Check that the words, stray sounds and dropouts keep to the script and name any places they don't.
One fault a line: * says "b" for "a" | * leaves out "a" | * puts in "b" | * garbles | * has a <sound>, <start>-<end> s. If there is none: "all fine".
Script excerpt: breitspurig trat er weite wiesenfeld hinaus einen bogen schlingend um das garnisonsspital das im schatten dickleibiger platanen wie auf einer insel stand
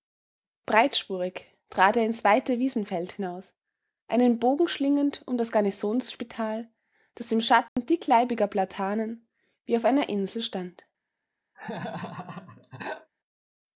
* puts in "ins"
* has a dropout, 7.7-7.8 s
* has a laugh, 11.5-13.1 s